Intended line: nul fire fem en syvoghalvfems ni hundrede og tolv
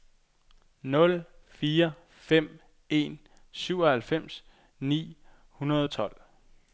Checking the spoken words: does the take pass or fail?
pass